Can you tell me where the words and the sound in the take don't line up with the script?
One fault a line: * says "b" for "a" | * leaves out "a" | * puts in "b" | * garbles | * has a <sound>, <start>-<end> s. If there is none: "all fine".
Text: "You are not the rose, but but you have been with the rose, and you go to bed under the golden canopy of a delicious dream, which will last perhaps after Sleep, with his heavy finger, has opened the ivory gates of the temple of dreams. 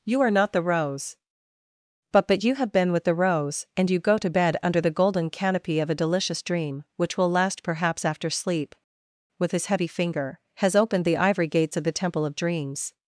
all fine